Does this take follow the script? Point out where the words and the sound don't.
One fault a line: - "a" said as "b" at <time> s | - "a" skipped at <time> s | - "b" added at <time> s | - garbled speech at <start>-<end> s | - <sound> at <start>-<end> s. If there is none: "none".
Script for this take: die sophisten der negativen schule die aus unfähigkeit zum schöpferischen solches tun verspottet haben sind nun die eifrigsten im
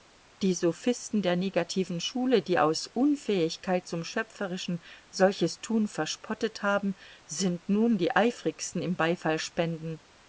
none